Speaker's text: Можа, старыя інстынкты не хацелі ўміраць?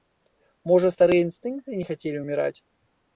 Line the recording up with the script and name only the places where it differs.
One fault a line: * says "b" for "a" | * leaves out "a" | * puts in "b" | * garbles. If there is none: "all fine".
all fine